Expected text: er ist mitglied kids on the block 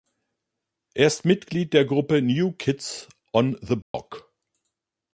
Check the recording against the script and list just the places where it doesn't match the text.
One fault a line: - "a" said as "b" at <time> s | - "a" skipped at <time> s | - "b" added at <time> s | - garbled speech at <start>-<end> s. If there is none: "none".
- "der gruppe new" added at 1.7 s